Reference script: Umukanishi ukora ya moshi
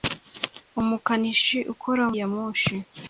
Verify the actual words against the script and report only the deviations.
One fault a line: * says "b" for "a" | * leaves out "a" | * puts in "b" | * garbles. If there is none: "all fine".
all fine